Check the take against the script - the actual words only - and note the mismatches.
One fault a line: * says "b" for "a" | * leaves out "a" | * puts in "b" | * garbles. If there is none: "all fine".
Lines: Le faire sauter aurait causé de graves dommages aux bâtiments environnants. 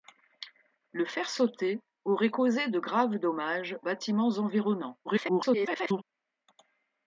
* leaves out "aux"
* garbles